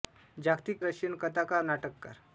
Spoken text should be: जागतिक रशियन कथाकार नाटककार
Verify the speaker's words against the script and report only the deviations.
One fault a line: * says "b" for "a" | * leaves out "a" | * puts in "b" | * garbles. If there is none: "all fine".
all fine